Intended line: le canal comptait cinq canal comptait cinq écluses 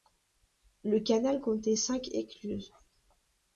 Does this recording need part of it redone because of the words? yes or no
yes